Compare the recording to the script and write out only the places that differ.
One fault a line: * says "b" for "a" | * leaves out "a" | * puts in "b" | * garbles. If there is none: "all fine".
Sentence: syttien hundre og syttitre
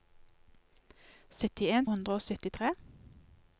all fine